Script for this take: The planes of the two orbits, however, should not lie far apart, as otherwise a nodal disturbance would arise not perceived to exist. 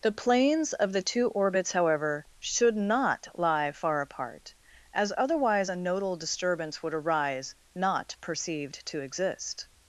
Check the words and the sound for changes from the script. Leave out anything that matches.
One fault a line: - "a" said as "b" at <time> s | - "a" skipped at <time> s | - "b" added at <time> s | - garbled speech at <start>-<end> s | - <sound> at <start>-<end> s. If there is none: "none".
none